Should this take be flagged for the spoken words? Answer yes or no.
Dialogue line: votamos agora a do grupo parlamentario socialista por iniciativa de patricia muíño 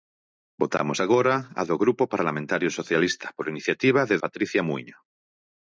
no